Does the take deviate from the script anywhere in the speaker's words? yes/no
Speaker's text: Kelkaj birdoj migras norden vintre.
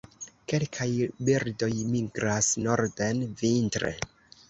no